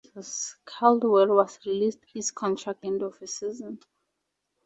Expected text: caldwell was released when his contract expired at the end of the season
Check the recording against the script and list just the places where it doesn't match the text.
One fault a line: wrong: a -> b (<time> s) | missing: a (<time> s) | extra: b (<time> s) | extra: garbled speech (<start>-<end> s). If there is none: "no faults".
missing: when (2.0 s)
missing: expired at the (2.9 s)